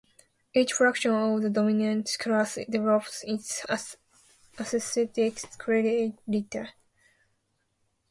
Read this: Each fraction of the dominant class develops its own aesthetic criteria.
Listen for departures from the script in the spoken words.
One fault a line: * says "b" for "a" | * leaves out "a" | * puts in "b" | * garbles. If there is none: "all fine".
* leaves out "own"